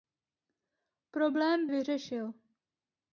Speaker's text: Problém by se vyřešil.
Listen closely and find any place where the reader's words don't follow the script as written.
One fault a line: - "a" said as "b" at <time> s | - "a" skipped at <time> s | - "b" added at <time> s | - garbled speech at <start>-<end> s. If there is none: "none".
- "by se" skipped at 1.7 s